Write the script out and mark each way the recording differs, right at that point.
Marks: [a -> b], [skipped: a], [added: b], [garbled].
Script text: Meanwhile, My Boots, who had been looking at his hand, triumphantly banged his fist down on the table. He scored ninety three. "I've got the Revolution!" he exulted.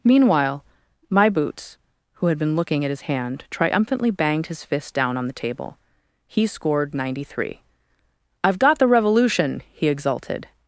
Meanwhile, My Boots, who had been looking at his hand, triumphantly banged his fist down on the table. He scored ninety three. "I've got the Revolution!" he exulted.